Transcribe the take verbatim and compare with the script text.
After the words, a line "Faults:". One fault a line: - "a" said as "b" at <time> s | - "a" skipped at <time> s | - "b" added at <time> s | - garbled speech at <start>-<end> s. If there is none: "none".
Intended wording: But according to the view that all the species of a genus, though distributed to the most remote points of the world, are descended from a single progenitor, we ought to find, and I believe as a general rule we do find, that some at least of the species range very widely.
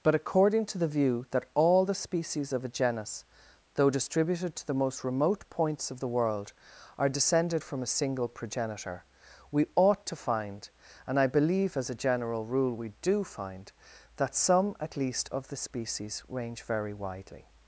But according to the view that all the species of a genus, though distributed to the most remote points of the world, are descended from a single progenitor, we ought to find, and I believe as a general rule we do find, that some at least of the species range very widely.
Faults:
none